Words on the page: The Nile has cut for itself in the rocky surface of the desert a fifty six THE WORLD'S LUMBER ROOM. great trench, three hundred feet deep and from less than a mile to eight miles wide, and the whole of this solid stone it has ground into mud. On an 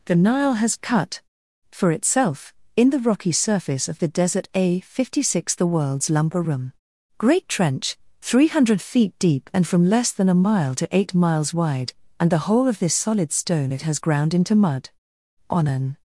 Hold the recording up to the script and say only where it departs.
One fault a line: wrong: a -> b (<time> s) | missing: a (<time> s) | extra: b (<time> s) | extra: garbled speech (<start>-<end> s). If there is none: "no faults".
no faults